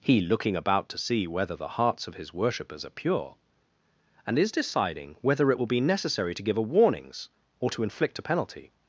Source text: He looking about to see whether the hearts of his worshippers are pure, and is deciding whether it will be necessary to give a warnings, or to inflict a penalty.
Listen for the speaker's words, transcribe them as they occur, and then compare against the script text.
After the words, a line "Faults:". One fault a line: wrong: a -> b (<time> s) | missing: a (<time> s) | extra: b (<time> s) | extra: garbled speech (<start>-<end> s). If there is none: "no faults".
He looking about to see whether the hearts of his worshippers are pure, and is deciding whether it will be necessary to give a warnings, or to inflict a penalty.
Faults:
no faults